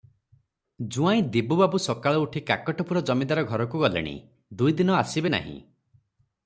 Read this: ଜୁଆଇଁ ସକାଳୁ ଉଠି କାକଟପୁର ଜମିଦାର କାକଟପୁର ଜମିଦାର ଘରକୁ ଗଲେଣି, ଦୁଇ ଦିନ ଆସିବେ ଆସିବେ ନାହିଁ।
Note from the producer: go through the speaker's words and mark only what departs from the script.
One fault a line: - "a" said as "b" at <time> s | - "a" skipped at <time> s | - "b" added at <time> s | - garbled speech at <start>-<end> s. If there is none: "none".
- "ଦିବୁବାବୁ" added at 1.3 s
- "କାକଟପୁର ଜମିଦାର" skipped at 3.4 s
- "ଆସିବେ" skipped at 5.3 s